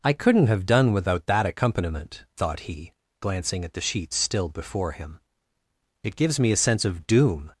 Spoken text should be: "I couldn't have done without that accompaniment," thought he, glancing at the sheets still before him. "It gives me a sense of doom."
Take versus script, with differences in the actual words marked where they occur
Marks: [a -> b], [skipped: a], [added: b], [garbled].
"I couldn't have done without that accompaniment," thought he, glancing at the sheets still before him. "It gives me a sense of doom."